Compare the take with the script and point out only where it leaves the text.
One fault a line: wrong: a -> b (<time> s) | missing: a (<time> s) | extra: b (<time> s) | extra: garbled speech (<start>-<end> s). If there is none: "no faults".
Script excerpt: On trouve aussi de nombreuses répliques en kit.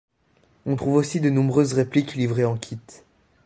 extra: livrées (2.2 s)